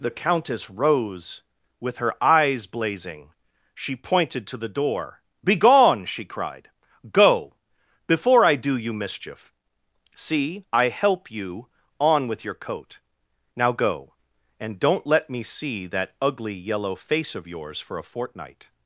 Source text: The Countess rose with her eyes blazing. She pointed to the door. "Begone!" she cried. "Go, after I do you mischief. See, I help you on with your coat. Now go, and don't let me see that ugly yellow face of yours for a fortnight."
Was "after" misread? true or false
true